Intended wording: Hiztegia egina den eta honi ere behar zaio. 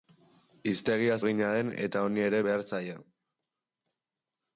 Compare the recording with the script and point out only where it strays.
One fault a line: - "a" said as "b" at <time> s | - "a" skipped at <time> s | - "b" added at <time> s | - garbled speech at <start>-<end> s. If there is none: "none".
none